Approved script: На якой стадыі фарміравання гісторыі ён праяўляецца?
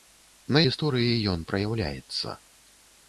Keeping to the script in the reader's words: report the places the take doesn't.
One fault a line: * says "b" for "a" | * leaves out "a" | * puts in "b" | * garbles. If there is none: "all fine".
* leaves out "якой стадыі фарміравання"